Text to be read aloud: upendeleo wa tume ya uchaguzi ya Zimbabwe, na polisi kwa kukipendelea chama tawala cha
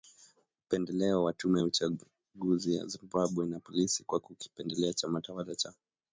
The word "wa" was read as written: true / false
true